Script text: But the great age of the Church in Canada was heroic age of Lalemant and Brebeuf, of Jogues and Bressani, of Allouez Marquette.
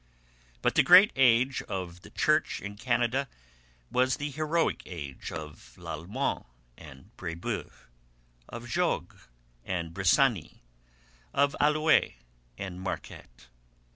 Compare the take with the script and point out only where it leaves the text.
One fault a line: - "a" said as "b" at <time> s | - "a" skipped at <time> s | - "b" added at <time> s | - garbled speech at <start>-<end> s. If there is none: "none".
- "the" added at 4.2 s
- "and" added at 12.6 s